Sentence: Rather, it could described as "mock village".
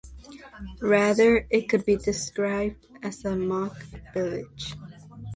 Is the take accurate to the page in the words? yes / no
no